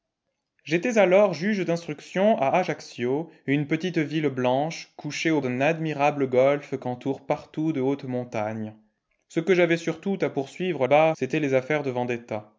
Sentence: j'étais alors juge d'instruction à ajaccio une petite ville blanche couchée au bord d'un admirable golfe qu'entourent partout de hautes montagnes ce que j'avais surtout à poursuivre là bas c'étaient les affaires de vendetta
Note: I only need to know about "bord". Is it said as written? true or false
false